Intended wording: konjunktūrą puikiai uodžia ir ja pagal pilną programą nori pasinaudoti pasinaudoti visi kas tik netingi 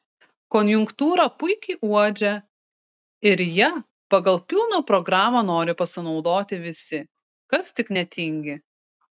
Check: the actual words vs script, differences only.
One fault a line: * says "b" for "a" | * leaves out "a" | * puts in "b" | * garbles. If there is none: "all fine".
* leaves out "pasinaudoti"